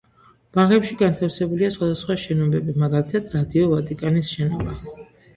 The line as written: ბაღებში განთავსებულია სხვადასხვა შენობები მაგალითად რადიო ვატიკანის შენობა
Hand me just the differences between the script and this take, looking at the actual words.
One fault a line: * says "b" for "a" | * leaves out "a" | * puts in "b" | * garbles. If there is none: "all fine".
all fine